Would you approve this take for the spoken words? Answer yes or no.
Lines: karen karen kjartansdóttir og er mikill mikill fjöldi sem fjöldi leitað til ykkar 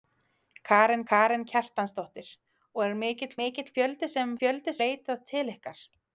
yes